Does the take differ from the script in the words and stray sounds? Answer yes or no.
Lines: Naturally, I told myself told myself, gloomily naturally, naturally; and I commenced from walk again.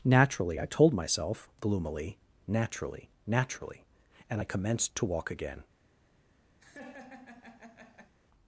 yes